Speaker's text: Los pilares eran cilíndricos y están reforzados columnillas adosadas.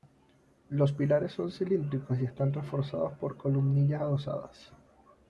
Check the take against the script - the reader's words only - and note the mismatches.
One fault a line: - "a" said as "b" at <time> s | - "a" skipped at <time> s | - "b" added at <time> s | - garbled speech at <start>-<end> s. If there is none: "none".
- "eran" said as "son" at 1.3 s
- "por" added at 3.2 s